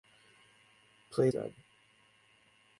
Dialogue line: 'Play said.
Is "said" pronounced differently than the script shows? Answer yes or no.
no